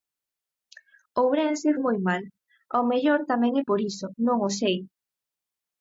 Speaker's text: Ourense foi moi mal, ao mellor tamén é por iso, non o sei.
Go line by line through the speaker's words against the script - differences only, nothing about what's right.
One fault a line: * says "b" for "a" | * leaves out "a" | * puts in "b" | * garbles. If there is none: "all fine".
* leaves out "foi"